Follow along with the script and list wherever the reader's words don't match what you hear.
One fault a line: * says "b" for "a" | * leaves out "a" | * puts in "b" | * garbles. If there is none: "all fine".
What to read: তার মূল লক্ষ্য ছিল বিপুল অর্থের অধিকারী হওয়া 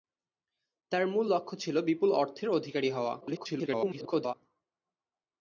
* garbles